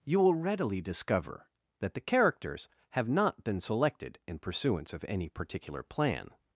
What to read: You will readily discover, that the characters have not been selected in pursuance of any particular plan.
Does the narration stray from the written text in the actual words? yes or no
no